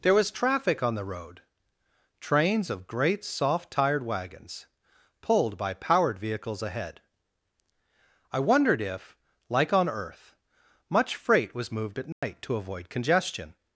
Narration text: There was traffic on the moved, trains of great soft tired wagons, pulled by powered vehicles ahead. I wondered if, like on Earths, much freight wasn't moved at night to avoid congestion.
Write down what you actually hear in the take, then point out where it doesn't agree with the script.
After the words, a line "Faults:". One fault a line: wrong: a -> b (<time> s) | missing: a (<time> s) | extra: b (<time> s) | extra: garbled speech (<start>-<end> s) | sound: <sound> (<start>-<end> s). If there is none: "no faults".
There was traffic on the road, trains of great soft tired wagons, pulled by powered vehicles ahead. I wondered if, like on Earth, much freight was moved at night to avoid congestion.
Faults:
wrong: moved -> road (1.1 s)
wrong: Earths -> Earth (9.9 s)
wrong: wasn't -> was (11.5 s)
sound: dropout (12.1-12.2 s)